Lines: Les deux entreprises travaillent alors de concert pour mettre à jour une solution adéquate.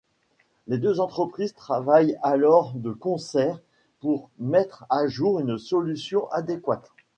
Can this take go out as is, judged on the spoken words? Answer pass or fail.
pass